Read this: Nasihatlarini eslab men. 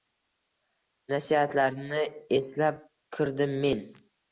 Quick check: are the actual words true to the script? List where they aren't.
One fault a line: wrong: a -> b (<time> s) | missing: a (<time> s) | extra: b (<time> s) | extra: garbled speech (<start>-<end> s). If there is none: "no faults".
extra: kirdim (3.2 s)